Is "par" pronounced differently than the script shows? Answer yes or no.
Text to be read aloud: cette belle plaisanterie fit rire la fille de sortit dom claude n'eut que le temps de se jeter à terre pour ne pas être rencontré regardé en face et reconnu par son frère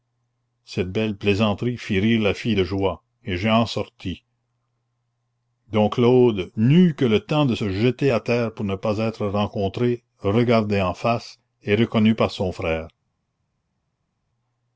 no